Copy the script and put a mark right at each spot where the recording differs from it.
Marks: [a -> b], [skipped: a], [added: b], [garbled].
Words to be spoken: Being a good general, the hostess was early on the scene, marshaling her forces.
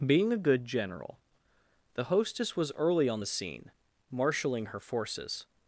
Being a good general, the hostess was early on the scene, marshaling her forces.